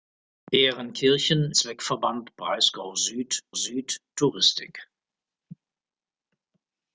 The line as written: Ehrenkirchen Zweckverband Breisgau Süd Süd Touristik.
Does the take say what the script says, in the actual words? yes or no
yes